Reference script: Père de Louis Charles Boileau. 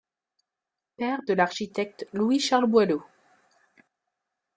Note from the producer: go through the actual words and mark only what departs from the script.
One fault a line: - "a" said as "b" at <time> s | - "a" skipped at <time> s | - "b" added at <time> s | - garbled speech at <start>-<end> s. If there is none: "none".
- "l'architecte" added at 1.4 s